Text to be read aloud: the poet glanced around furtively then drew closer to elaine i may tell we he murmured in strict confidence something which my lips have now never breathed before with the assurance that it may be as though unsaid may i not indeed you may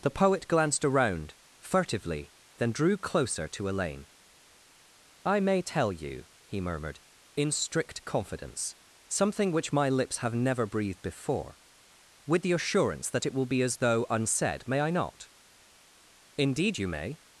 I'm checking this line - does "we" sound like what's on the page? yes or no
no